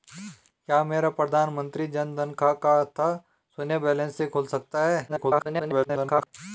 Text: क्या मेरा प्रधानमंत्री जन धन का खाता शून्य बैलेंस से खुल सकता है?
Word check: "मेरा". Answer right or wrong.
right